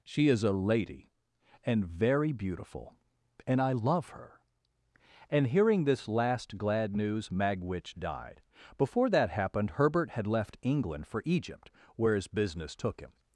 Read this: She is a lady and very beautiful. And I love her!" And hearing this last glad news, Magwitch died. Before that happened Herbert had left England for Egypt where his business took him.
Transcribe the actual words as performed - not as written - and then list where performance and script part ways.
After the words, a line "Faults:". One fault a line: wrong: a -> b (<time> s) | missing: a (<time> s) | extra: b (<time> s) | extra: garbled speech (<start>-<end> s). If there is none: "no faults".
She is a lady and very beautiful. And I love her!" And hearing this last glad news, Magwitch died. Before that happened Herbert had left England for Egypt where his business took him.
Faults:
no faults